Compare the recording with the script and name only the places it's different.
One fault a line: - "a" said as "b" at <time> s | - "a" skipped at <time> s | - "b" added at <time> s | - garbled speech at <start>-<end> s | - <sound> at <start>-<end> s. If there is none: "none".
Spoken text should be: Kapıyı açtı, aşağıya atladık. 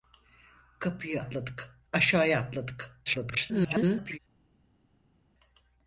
- "açtı" said as "atladık" at 1.2 s
- garbled speech at 3.0-4.2 s